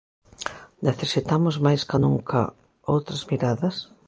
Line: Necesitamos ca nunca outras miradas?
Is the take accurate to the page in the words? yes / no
no